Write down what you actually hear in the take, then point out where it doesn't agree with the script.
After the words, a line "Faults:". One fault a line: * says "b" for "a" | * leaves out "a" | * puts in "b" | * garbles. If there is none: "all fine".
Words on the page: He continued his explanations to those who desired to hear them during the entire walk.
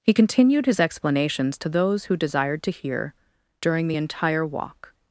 He continued his explanations to those who desired to hear during the entire walk.
Faults:
* leaves out "them"